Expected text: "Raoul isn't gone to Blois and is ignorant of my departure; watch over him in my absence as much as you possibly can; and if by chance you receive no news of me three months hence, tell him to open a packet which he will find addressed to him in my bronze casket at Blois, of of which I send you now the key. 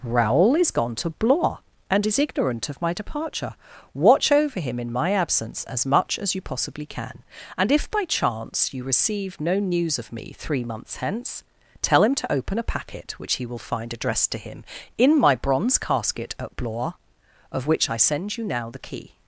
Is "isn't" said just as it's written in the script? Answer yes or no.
no